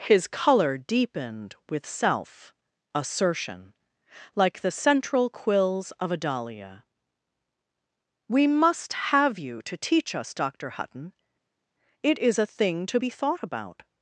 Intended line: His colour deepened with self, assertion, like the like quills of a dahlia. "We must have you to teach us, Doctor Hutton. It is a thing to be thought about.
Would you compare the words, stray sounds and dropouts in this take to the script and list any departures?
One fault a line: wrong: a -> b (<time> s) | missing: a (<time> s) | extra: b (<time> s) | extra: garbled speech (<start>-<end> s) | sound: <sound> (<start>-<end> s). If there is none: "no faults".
wrong: like -> central (4.7 s)